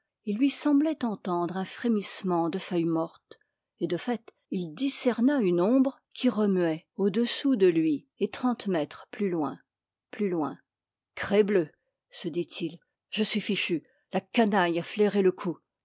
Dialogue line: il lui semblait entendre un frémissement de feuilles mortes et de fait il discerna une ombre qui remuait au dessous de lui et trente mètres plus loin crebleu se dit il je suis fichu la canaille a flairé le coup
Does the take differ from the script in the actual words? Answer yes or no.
yes